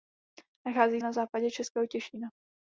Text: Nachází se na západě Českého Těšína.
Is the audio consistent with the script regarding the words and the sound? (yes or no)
no